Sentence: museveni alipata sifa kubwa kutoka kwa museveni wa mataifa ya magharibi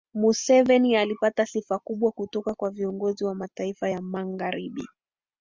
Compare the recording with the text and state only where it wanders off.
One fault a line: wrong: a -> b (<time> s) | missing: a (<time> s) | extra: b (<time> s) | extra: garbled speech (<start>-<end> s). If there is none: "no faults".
wrong: museveni -> viongozi (2.7 s)